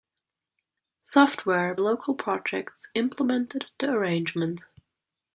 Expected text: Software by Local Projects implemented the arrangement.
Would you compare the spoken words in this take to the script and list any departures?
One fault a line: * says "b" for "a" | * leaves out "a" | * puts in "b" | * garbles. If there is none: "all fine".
* leaves out "by"